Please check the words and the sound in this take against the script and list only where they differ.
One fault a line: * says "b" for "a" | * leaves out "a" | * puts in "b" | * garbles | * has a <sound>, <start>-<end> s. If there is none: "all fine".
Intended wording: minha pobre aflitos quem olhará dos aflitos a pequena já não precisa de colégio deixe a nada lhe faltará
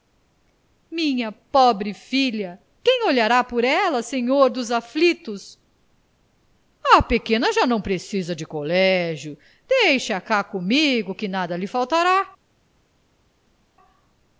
* says "filha" for "aflitos"
* puts in "por ela senhor"
* puts in "cá comigo que"